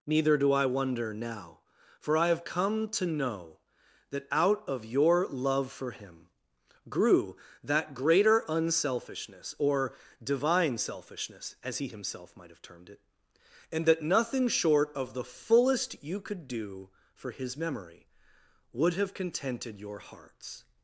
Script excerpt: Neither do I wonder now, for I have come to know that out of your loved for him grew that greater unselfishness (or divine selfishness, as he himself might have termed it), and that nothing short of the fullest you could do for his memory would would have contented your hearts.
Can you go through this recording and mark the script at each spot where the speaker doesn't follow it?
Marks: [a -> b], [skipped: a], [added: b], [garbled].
Neither do I wonder now, for I have come to know that out of your [loved -> love] for him grew that greater unselfishness (or divine selfishness, as he himself might have termed it), and that nothing short of the fullest you could do for his memory would [skipped: would] have contented your hearts.